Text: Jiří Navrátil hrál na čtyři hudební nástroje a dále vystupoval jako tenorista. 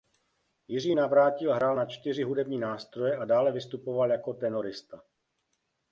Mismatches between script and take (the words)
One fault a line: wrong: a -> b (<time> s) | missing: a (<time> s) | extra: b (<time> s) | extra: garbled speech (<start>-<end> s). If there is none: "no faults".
no faults